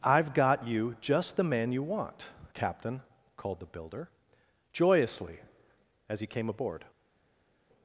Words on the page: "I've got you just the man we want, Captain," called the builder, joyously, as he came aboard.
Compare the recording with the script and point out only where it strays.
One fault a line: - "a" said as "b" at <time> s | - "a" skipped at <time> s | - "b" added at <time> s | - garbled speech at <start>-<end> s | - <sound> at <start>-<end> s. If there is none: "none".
- "we" said as "you" at 1.7 s